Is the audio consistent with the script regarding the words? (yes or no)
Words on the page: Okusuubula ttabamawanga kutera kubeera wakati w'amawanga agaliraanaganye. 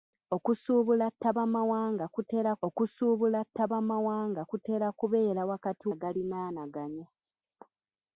no